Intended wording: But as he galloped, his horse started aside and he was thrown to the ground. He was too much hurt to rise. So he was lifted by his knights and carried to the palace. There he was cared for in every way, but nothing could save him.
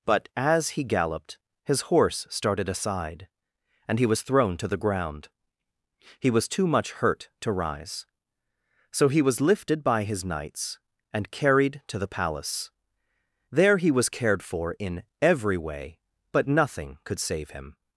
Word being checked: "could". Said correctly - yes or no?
yes